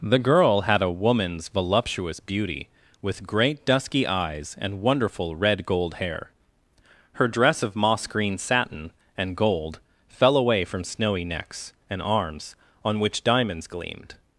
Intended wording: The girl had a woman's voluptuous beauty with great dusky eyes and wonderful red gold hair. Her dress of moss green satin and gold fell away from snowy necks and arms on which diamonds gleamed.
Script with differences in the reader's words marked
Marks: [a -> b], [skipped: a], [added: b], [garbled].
The girl had a woman's voluptuous beauty with great dusky eyes and wonderful red gold hair. Her dress of moss green satin and gold fell away from snowy necks and arms on which diamonds gleamed.